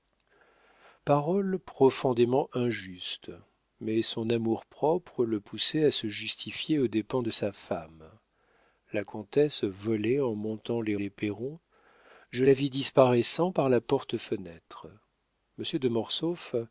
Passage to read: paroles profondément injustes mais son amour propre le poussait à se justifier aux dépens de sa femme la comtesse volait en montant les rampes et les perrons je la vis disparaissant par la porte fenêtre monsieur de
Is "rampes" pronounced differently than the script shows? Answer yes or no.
yes